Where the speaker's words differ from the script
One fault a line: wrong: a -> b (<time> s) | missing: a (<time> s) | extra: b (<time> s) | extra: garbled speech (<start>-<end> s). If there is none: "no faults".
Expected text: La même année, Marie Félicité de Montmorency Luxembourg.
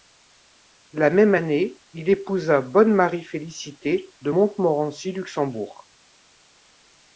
extra: il épousa Bonne (1.9 s)